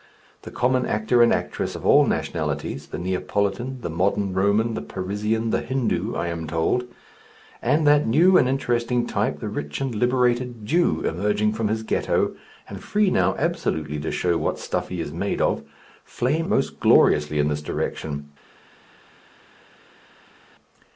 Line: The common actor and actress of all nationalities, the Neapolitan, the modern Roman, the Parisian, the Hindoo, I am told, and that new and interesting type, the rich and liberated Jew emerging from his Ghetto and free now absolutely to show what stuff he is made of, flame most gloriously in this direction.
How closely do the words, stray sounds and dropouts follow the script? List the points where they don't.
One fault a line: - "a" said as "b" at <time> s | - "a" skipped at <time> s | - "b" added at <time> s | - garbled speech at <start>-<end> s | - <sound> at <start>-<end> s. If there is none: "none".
none